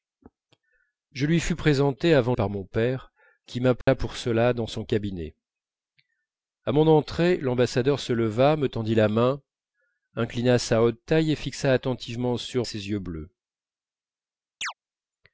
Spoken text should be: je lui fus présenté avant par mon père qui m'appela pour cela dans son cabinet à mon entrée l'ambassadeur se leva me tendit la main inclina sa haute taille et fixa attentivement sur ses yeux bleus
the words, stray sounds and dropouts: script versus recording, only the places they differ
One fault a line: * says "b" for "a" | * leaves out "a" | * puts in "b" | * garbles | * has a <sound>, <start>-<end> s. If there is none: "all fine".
* has a dropout, 3.8-3.9 s
* has a chirp, 14.6-14.7 s